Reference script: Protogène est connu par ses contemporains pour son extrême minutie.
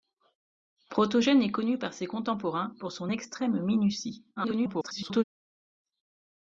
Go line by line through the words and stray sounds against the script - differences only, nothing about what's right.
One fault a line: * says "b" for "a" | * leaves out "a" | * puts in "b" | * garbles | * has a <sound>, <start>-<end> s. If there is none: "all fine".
* garbles